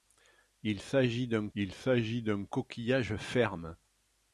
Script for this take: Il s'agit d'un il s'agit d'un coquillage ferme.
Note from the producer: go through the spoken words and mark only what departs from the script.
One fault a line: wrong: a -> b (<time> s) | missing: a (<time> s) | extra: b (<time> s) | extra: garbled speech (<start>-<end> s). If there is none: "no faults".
no faults